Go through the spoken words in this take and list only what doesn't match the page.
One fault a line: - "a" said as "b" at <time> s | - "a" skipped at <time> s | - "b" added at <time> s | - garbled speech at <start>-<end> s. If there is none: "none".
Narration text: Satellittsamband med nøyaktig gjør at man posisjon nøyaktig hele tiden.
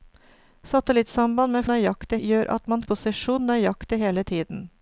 none